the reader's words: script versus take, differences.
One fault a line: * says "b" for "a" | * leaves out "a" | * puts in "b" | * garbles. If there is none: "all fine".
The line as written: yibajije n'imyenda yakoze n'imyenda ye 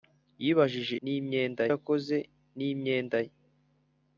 all fine